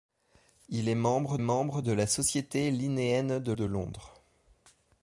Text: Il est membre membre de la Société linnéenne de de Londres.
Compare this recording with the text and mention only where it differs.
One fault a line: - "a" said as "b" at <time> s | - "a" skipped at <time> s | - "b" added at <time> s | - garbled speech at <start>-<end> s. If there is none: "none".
none